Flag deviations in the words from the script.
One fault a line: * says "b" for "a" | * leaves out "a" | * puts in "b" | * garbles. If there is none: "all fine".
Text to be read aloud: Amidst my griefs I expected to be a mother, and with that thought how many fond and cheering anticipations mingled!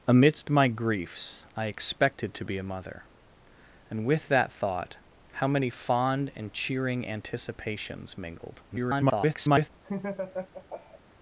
* garbles